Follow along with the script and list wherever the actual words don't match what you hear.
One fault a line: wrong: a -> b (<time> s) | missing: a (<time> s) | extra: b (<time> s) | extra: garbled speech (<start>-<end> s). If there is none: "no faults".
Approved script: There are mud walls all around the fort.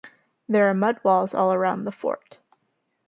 no faults